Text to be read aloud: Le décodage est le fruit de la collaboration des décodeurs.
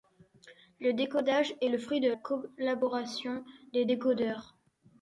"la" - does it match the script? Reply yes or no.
no